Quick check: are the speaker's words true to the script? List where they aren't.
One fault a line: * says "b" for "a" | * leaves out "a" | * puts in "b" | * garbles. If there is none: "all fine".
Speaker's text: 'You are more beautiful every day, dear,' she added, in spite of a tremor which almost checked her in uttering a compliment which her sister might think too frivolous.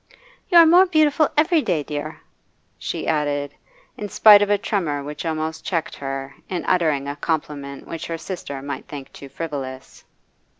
all fine